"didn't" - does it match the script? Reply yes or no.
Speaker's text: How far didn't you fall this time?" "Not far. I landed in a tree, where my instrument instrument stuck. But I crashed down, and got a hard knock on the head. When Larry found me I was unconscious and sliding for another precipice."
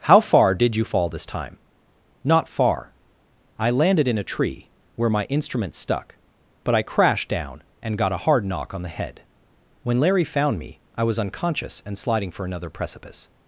no